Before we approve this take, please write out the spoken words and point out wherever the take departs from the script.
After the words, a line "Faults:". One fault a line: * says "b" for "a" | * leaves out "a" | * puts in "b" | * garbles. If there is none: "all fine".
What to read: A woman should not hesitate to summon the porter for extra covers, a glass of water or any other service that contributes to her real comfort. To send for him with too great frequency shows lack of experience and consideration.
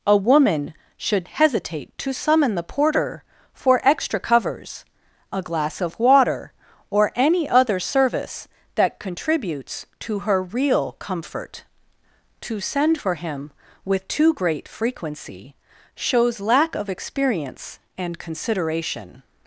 A woman should hesitate to summon the porter for extra covers, a glass of water or any other service that contributes to her real comfort. To send for him with too great frequency shows lack of experience and consideration.
Faults:
* leaves out "not"